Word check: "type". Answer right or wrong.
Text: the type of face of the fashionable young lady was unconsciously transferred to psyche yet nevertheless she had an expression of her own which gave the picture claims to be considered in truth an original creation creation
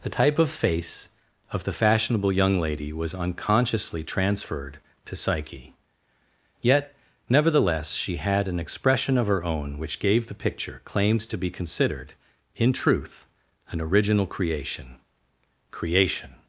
right